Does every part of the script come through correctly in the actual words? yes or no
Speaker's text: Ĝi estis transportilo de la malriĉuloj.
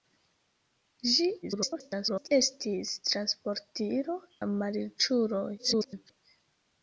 no